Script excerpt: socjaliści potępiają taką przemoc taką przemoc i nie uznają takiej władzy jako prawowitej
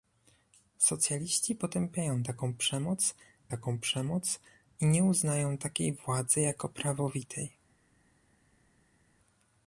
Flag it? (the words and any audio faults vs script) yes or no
no